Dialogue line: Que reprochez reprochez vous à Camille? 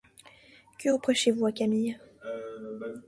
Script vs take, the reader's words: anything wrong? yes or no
yes